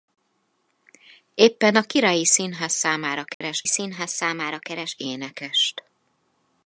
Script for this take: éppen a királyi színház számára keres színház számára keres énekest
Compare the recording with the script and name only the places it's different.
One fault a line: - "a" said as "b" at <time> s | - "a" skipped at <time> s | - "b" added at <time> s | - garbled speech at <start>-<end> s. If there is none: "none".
none